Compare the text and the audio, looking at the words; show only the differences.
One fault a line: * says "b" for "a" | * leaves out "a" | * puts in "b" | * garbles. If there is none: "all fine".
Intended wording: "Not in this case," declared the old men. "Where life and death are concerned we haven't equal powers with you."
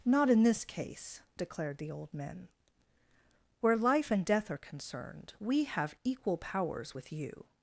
* says "have" for "haven't"